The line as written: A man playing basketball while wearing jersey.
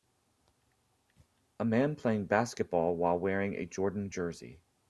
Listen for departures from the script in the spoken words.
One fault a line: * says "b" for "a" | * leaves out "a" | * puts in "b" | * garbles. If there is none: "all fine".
* puts in "a Jordan"